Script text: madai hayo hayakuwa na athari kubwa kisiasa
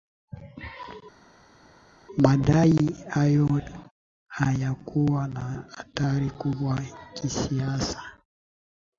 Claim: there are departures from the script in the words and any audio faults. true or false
false